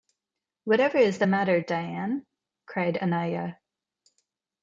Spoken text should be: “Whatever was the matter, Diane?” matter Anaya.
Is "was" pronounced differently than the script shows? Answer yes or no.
yes